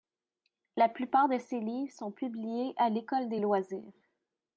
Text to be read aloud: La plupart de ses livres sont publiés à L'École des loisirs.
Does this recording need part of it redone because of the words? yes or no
no